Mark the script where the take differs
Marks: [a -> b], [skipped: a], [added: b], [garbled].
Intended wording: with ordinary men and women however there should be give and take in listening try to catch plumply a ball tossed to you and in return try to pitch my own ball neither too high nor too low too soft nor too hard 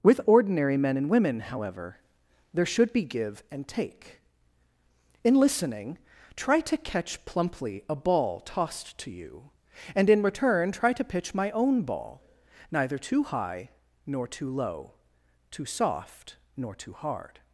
with ordinary men and women however there should be give and take in listening try to catch plumply a ball tossed to you and in return try to pitch my own ball neither too high nor too low too soft nor too hard